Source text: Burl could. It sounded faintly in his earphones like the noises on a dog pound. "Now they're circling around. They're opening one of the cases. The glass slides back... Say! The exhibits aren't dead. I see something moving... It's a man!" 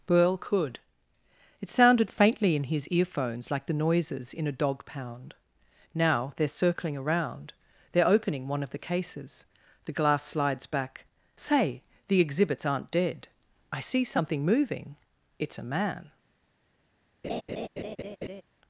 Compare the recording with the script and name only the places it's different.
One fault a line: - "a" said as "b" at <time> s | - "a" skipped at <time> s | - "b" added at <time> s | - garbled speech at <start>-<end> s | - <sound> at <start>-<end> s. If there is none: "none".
- "on" said as "in" at 4.3 s
- laugh at 17.2-18.4 s